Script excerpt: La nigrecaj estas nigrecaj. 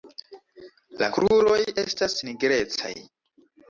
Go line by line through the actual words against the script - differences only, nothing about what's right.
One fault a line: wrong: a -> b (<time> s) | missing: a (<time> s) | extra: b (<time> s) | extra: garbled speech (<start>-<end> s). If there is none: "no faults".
wrong: nigrecaj -> kruroj (1.1 s)